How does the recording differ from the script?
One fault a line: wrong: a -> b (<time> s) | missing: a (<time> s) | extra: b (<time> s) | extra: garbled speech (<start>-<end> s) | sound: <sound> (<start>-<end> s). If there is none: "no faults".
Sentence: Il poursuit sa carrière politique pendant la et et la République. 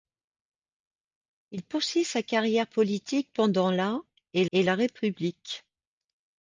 no faults